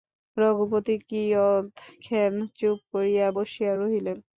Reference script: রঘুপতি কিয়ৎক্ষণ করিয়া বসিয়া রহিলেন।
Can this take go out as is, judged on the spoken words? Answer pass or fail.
fail